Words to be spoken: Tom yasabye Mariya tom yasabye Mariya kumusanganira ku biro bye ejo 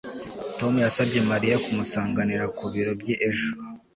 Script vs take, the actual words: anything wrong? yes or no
yes